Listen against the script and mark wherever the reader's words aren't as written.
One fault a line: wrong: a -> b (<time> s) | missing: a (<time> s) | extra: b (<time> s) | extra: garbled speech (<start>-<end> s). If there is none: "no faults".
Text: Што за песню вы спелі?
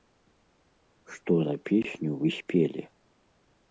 no faults